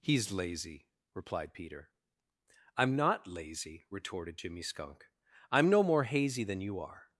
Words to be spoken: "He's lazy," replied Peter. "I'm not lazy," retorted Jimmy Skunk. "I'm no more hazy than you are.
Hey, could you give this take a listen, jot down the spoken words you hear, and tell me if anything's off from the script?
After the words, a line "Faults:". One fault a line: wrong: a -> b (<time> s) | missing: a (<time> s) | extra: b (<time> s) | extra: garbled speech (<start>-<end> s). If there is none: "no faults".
"He's lazy," replied Peter. "I'm not lazy," retorted Jimmy Skunk. "I'm no more hazy than you are.
Faults:
no faults